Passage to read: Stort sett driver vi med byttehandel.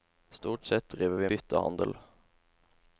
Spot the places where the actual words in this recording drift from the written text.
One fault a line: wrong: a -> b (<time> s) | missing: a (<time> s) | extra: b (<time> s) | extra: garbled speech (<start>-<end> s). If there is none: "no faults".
missing: med (1.3 s)